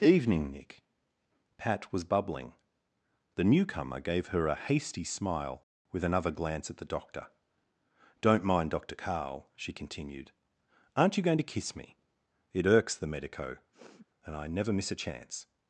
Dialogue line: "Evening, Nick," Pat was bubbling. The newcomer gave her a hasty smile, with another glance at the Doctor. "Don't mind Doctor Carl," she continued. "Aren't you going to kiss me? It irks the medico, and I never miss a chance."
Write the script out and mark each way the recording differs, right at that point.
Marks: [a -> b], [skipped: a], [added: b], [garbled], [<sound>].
"Evening, Nick," Pat was bubbling. The newcomer gave her a hasty smile, with another glance at the Doctor. "Don't mind Doctor Carl," she continued. "Aren't you going to kiss me? It irks the medico, [sniff] and I never miss a chance."